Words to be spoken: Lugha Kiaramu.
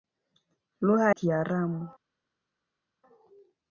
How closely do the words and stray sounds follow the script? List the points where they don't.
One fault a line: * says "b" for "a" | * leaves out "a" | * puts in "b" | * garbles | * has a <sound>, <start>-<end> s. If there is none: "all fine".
all fine